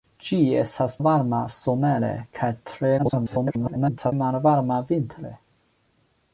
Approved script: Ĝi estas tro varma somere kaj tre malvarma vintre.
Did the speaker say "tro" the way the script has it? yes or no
no